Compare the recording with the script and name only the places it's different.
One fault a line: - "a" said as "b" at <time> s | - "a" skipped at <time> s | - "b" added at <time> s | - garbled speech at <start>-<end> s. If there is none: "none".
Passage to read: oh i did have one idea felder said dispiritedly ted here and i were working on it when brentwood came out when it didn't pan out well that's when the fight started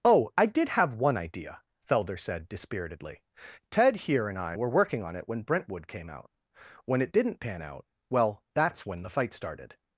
none